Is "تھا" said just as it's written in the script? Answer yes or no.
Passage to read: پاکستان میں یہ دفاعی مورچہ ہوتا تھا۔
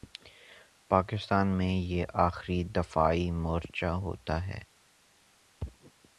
no